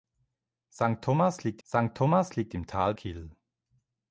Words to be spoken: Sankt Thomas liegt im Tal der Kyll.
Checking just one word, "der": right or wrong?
wrong